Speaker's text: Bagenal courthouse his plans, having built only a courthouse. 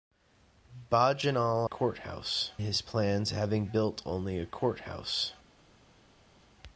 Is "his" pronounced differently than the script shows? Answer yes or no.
no